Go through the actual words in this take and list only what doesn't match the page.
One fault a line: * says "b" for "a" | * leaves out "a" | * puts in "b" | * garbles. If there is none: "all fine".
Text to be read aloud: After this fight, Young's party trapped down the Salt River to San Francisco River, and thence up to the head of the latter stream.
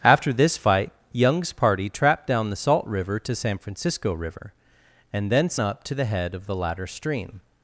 all fine